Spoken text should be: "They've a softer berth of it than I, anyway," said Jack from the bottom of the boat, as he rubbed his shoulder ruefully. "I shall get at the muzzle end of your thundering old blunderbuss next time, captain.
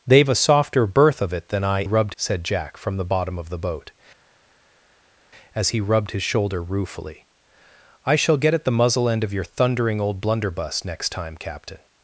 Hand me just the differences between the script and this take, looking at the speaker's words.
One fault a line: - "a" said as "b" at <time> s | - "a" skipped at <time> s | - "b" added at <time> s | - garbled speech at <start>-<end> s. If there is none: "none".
- "anyway" said as "rubbed" at 1.8 s